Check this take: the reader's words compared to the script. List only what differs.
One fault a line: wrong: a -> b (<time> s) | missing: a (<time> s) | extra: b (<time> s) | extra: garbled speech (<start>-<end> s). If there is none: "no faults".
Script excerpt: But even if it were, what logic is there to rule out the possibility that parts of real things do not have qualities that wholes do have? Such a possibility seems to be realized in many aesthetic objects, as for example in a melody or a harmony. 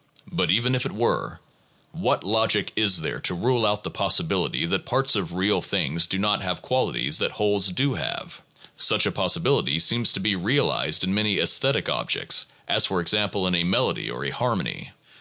no faults